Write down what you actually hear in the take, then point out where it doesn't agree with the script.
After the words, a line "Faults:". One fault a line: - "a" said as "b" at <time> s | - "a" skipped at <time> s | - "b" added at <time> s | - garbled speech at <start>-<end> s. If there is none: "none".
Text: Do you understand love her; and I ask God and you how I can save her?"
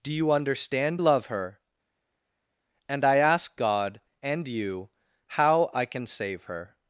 Do you understand love her; and I ask God and you how I can save her?"
Faults:
none